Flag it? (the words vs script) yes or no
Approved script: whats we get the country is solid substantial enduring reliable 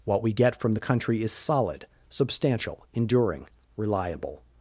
yes